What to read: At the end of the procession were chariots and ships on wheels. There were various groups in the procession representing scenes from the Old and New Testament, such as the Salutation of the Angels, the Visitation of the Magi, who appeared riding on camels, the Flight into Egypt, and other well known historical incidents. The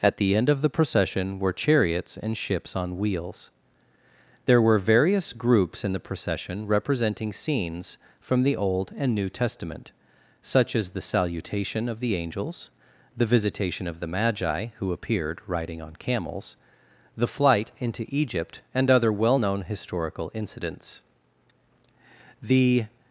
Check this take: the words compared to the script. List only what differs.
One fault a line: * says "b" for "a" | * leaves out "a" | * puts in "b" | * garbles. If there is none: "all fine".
all fine